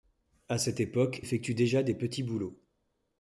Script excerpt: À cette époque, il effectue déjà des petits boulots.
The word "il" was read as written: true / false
false